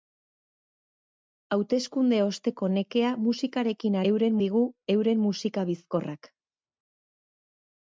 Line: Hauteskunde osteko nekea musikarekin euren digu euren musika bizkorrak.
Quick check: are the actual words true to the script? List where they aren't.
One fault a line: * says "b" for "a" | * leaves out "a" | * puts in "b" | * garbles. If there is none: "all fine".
all fine